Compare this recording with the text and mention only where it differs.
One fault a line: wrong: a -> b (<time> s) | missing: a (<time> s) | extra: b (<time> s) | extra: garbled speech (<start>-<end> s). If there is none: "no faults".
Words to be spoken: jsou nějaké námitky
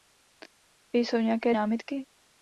no faults